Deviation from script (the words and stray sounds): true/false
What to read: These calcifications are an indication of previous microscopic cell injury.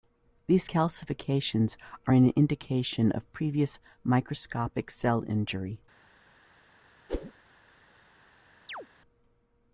true